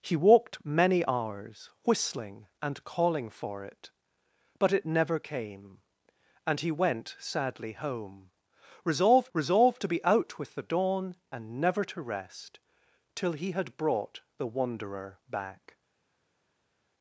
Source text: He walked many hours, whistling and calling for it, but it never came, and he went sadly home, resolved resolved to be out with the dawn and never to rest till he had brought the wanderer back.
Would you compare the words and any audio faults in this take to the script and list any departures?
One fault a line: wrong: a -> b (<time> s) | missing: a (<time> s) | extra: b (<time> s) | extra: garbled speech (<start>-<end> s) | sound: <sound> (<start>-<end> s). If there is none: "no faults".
no faults